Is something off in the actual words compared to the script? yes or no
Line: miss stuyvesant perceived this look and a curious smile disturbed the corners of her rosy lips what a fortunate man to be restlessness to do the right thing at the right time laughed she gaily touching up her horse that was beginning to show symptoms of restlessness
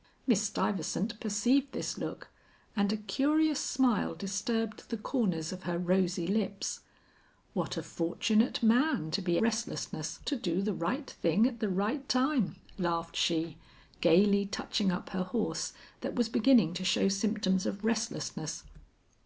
no